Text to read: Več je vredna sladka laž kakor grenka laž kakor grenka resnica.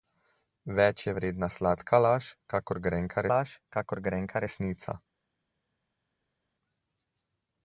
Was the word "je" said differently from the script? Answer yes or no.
no